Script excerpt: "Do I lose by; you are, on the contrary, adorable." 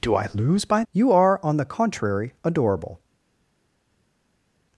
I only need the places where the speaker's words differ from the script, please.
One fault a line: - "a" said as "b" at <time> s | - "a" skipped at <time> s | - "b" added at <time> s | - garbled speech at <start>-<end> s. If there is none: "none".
none